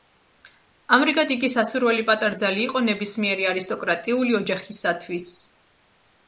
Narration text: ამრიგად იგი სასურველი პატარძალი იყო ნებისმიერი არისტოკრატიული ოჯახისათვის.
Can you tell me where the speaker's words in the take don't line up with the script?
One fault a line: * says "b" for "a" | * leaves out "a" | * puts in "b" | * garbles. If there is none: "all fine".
all fine